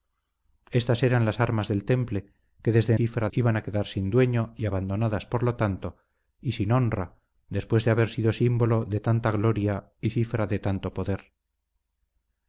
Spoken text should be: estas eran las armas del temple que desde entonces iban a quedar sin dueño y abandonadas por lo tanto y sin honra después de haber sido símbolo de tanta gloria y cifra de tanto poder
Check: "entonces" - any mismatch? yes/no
yes